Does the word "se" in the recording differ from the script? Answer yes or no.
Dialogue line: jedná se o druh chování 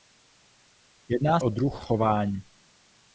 yes